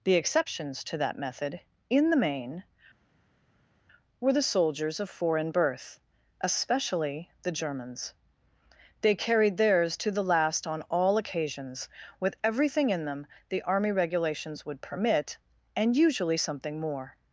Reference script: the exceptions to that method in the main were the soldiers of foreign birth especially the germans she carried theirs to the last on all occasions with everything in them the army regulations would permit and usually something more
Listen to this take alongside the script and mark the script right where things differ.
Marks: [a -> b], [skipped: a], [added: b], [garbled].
the exceptions to that method in the main were the soldiers of foreign birth especially the germans [she -> they] carried theirs to the last on all occasions with everything in them the army regulations would permit and usually something more